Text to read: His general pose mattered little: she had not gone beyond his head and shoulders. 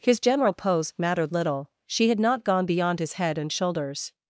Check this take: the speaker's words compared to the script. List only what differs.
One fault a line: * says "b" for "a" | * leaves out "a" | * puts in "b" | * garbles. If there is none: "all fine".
all fine